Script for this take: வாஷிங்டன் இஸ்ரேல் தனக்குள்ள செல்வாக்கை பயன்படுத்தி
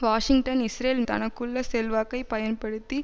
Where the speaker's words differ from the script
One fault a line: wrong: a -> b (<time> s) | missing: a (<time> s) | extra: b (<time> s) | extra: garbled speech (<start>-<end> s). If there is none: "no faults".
no faults